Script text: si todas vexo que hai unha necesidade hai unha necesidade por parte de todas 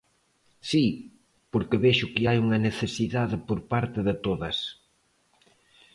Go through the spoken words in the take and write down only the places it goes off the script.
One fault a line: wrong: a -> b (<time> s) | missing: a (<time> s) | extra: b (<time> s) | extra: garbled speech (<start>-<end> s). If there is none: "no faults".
wrong: todas -> porque (1.5 s)
missing: hai unha necesidade (3.4 s)